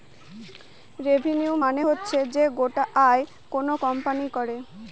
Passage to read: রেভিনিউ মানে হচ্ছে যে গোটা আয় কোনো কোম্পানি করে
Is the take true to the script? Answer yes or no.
yes